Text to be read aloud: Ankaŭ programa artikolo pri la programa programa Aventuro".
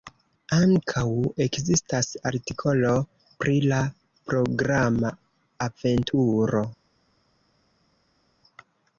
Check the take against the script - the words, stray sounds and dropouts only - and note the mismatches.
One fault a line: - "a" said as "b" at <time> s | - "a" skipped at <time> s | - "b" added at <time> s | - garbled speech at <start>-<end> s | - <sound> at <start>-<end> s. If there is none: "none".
- "programa" said as "ekzistas" at 1.4 s
- "programa" skipped at 5.1 s